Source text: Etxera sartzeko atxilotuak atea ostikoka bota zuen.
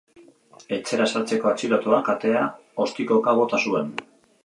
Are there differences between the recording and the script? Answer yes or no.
no